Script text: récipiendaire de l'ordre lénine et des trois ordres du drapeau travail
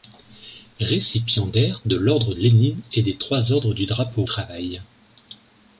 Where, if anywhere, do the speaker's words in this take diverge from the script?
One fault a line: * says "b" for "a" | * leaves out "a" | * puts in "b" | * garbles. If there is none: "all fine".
all fine